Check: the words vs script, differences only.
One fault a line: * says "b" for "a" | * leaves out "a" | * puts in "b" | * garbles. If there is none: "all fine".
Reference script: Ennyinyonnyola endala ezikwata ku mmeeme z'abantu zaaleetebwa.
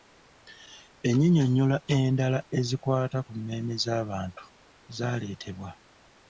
all fine